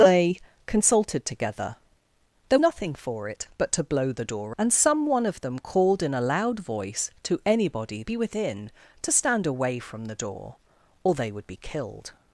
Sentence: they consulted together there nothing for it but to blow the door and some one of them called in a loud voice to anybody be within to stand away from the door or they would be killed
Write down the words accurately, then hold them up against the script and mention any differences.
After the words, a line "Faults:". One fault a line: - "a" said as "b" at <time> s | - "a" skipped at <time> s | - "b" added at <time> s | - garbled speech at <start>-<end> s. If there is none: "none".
they consulted together there nothing for it but to blow the door and some one of them called in a loud voice to anybody be within to stand away from the door or they would be killed
Faults:
none